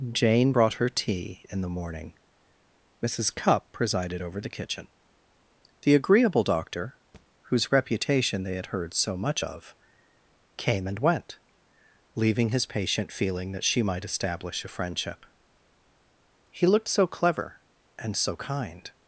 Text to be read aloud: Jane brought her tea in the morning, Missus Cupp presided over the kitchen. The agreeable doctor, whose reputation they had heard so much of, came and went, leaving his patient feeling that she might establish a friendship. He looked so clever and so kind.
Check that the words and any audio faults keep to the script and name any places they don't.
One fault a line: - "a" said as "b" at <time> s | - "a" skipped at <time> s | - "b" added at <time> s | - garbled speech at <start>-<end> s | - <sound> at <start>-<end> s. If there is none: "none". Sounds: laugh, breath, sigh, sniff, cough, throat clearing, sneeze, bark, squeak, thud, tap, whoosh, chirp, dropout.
- thud at 7.1-7.3 s